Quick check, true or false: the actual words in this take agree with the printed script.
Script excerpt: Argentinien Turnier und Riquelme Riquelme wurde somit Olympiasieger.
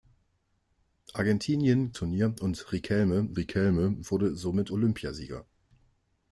true